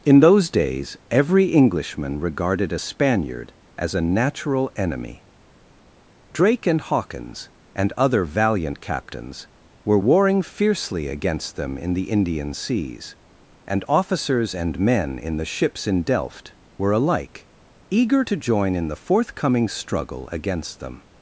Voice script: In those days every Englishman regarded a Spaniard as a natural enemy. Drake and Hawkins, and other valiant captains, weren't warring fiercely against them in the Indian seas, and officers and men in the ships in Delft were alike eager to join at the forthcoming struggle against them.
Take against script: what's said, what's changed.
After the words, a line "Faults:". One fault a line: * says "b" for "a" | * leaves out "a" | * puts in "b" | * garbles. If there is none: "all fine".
In those days every Englishman regarded a Spaniard as a natural enemy. Drake and Hawkins, and other valiant captains, were warring fiercely against them in the Indian seas, and officers and men in the ships in Delft were alike eager to join in the forthcoming struggle against them.
Faults:
* says "were" for "weren't"
* says "in" for "at"